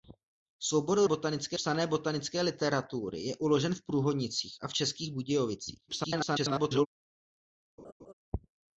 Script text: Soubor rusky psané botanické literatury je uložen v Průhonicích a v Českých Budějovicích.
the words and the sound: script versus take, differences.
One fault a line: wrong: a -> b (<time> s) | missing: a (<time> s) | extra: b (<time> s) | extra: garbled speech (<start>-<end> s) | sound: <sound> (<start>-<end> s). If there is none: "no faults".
wrong: rusky -> botanické (1.0 s)
extra: garbled speech (5.9-6.9 s)
sound: laugh (7.8-8.1 s)